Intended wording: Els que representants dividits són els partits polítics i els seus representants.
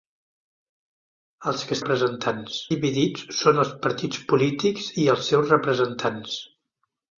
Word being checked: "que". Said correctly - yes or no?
yes